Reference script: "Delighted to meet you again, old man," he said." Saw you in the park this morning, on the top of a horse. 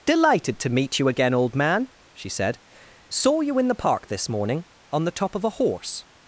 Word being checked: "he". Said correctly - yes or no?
no